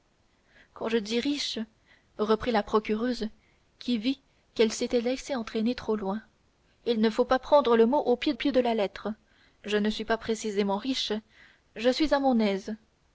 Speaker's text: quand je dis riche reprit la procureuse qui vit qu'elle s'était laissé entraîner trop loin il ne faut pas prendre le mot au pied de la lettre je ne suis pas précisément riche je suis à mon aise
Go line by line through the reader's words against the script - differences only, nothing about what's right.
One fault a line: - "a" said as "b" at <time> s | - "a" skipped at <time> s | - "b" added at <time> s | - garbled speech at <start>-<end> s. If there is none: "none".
- "pied" added at 8.3 s